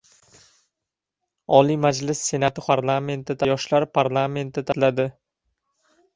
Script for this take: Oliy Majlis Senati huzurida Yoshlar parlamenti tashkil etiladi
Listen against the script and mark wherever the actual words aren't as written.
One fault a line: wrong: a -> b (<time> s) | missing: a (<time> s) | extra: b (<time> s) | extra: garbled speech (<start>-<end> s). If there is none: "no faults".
wrong: huzurida -> parlamenti (2.7 s)
missing: tashkil (4.7 s)